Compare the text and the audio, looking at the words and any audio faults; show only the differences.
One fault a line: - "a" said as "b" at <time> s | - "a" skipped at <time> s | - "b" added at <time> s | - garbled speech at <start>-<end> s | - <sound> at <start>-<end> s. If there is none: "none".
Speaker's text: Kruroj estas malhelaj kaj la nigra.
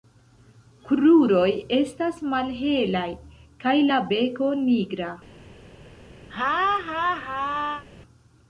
- "beko" added at 4.1 s
- laugh at 6.3-7.8 s